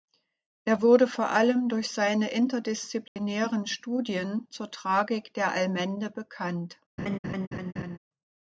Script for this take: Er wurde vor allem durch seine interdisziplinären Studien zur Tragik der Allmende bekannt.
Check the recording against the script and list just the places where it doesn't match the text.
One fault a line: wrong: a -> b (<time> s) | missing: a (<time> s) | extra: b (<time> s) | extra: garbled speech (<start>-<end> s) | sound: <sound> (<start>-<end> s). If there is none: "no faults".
sound: dropout (3.1-3.2 s)
sound: laugh (7.0-8.0 s)